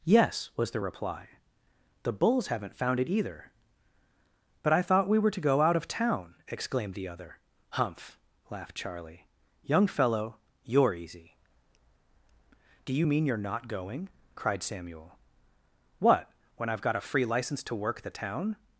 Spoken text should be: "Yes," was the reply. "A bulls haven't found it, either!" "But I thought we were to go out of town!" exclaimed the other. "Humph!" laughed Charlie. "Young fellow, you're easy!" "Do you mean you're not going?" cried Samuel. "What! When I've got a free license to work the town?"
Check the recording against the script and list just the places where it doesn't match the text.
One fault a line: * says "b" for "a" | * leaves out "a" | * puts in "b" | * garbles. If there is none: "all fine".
* says "The" for "A"